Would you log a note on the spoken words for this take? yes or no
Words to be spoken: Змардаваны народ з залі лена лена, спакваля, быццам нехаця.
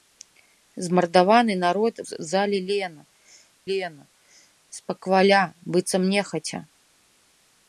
no